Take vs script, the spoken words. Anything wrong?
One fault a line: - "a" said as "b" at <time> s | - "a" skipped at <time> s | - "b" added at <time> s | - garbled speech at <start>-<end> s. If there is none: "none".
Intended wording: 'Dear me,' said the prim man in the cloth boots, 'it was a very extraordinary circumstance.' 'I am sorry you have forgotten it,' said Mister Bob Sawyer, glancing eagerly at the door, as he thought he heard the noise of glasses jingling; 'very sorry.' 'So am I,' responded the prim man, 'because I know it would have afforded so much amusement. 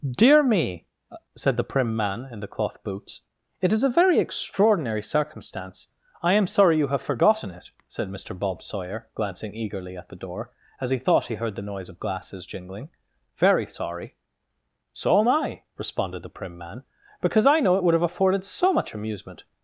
- "was" said as "is" at 3.7 s